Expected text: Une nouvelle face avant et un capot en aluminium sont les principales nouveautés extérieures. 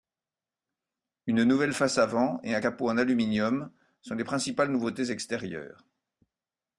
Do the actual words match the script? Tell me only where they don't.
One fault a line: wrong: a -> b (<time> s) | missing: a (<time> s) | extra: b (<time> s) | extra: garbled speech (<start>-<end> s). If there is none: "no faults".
no faults